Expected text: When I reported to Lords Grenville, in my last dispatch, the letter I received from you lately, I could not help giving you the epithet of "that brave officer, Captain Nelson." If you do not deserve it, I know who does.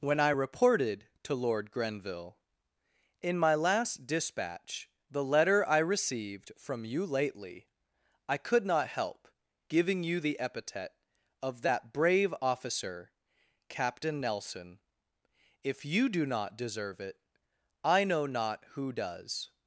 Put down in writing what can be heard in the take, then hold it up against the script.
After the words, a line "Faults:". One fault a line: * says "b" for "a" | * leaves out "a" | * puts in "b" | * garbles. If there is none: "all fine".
When I reported to Lord Grenville, in my last dispatch, the letter I received from you lately, I could not help giving you the epithet of "that brave officer, Captain Nelson." If you do not deserve it, I know not who does.
Faults:
* says "Lord" for "Lords"
* puts in "not"